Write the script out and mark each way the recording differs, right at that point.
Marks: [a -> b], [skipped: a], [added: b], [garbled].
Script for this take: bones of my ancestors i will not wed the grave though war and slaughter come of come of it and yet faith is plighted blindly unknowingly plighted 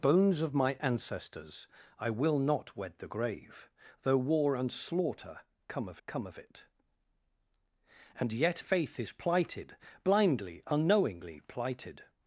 bones of my ancestors i will not wed the grave though war and slaughter come of come of it and yet faith is plighted blindly unknowingly plighted